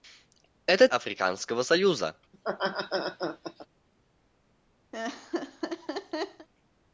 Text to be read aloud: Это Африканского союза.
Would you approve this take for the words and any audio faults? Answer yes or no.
no